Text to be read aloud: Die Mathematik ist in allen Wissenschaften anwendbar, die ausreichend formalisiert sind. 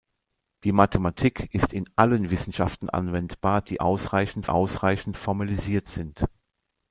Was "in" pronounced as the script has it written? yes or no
yes